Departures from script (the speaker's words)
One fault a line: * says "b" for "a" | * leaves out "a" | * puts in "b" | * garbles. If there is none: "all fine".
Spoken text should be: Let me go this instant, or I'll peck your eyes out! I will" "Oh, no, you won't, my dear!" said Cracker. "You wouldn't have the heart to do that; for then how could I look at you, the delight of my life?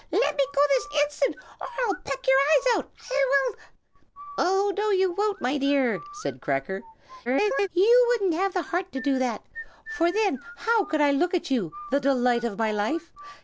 * garbles